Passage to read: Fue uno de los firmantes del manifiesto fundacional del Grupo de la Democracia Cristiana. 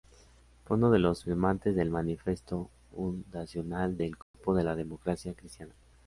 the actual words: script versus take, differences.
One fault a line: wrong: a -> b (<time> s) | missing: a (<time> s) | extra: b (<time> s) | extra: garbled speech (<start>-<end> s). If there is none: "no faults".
no faults